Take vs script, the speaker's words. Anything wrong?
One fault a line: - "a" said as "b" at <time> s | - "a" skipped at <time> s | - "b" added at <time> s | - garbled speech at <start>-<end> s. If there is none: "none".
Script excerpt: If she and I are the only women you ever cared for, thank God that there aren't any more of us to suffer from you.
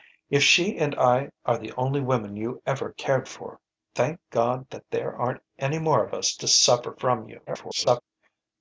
- garbled speech at 7.5-8.0 s